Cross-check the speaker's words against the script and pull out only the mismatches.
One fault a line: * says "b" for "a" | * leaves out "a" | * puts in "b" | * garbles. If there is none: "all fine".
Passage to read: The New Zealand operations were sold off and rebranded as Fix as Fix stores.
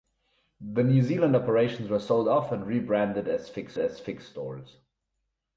all fine